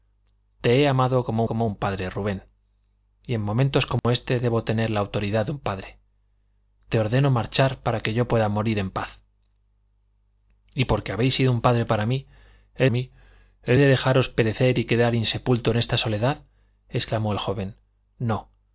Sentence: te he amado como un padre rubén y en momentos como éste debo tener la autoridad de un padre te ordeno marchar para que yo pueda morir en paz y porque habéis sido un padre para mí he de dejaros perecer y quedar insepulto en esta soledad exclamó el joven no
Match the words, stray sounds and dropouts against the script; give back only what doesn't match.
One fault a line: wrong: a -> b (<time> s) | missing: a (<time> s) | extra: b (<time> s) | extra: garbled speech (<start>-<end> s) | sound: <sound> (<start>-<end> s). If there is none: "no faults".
extra: como (1.4 s)
sound: dropout (4.0-4.0 s)
extra: mí he (12.9 s)